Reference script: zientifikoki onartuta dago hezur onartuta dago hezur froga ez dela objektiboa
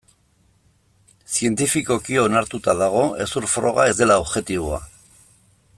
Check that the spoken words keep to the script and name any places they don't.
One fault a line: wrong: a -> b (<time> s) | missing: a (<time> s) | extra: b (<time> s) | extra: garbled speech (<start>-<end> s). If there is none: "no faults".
missing: onartuta dago hezur (3.5 s)